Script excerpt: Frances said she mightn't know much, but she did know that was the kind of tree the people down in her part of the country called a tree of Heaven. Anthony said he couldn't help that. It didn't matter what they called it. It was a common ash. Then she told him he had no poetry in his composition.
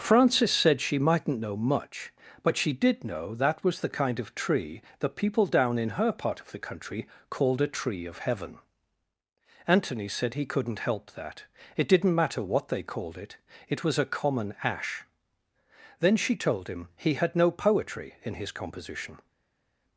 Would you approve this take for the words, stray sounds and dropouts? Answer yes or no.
yes